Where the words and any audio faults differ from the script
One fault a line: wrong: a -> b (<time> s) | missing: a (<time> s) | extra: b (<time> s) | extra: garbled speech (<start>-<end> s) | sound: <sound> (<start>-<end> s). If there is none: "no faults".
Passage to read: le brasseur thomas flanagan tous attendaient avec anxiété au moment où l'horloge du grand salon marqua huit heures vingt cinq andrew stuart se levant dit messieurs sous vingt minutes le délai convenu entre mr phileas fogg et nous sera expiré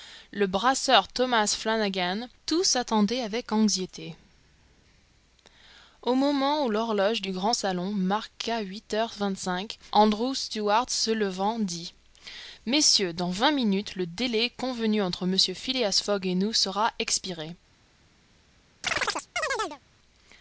wrong: sous -> dans (13.1 s)
sound: chirp (18.8-19.8 s)